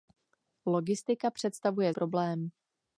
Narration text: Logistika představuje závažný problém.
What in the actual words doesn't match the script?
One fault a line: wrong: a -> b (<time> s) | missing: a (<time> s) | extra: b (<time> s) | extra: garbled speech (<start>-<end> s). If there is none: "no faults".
missing: závažný (1.9 s)